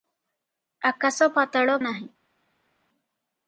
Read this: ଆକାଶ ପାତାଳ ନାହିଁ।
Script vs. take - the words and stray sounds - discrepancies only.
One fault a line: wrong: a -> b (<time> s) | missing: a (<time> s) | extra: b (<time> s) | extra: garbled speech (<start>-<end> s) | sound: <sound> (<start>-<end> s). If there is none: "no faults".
no faults